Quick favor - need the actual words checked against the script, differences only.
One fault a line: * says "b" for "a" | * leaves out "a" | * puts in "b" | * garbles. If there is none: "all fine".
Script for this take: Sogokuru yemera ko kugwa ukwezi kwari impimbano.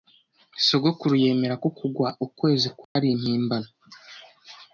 all fine